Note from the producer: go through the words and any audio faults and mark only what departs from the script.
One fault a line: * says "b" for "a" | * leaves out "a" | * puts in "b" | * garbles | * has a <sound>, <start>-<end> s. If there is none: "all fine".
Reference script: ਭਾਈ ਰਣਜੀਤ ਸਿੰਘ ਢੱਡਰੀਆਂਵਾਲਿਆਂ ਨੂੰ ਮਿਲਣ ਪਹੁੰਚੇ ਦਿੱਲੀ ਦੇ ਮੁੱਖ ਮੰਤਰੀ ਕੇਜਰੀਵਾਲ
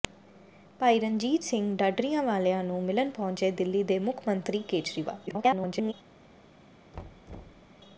* garbles
* has a thud, 6.9-7.7 s